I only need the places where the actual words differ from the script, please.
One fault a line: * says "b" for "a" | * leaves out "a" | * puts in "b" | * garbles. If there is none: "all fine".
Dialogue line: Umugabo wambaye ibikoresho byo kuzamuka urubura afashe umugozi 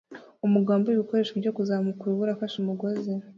all fine